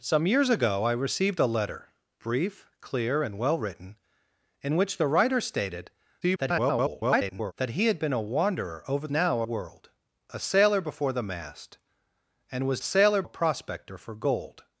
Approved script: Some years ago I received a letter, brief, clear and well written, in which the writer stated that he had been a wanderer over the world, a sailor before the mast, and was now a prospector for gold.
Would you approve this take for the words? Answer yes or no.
no